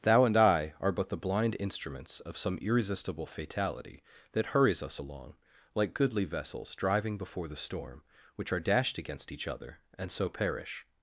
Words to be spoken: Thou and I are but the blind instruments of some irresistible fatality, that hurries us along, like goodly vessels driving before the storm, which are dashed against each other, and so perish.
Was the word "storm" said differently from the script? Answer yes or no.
no